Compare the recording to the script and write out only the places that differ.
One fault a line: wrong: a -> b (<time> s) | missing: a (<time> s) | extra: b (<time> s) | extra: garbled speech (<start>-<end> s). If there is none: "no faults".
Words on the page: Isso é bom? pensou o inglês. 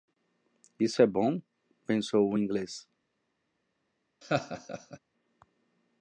no faults